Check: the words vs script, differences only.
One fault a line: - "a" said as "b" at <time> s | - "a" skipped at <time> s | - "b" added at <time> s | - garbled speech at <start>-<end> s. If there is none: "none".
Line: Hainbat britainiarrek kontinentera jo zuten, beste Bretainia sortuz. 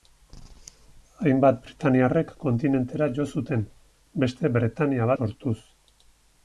none